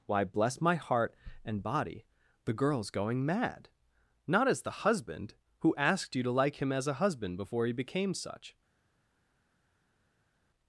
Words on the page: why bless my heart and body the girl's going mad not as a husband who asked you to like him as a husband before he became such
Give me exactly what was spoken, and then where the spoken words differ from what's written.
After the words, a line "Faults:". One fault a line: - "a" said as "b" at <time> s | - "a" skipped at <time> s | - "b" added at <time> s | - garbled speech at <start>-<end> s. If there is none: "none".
why bless my heart and body the girl's going mad not as the husband who asked you to like him as a husband before he became such
Faults:
- "a" said as "the" at 4.6 s